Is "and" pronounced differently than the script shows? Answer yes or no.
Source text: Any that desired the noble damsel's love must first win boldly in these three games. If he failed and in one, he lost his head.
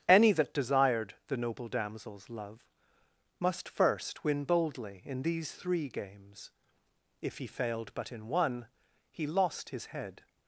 yes